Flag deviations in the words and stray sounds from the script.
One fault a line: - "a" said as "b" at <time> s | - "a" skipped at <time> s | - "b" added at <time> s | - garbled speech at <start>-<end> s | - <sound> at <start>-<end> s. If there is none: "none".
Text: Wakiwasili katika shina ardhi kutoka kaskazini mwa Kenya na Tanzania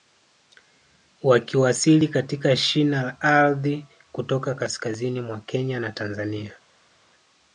- "la" added at 3.0 s